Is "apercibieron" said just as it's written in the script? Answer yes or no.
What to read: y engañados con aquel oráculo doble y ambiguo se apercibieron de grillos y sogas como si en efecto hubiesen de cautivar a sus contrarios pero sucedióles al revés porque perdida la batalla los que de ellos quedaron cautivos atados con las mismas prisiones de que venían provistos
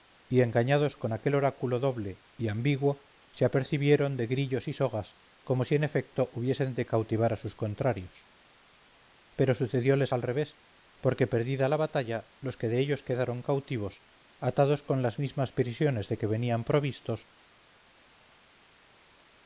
yes